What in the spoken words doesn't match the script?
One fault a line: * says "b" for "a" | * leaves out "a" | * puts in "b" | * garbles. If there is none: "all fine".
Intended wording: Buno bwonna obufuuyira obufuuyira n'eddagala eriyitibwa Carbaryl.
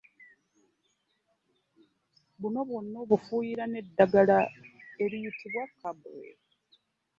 * leaves out "obufuuyira"